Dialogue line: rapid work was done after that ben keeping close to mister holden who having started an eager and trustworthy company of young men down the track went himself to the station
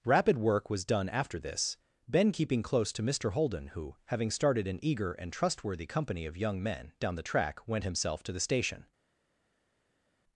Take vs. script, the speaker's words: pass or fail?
fail